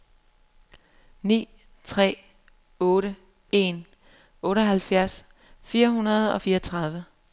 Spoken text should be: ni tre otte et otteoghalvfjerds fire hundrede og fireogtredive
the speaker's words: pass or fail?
fail